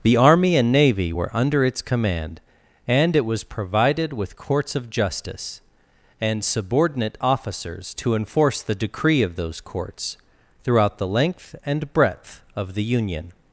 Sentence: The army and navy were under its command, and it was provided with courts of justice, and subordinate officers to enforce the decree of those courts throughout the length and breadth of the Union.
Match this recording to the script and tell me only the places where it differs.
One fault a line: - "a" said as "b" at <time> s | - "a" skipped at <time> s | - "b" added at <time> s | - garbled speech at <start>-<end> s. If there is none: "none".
none